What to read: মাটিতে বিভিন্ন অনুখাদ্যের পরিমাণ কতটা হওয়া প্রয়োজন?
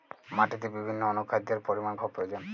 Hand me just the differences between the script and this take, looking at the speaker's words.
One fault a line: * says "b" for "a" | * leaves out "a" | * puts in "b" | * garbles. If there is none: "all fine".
* leaves out "কতটা"